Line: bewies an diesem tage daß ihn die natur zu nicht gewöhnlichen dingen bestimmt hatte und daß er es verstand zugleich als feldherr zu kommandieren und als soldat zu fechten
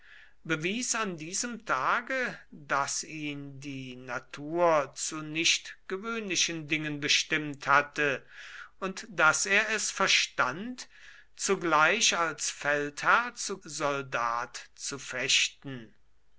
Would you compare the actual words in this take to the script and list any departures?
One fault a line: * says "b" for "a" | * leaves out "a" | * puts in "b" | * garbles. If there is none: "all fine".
* leaves out "kommandieren und als"